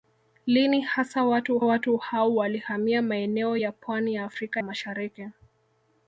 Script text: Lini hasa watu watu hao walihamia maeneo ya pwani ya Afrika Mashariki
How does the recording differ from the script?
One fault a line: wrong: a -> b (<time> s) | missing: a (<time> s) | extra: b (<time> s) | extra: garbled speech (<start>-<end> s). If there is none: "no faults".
no faults